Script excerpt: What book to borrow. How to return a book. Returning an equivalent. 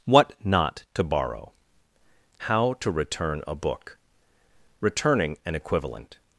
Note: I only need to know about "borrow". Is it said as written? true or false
true